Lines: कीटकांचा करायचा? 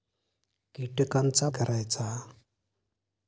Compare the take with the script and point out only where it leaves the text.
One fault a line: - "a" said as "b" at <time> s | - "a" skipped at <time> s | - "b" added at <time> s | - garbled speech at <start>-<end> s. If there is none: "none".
none